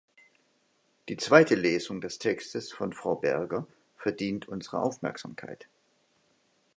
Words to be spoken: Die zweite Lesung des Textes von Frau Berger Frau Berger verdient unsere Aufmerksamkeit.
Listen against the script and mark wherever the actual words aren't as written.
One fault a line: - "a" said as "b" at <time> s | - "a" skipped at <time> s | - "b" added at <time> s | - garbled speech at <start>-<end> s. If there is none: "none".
- "Frau Berger" skipped at 3.7 s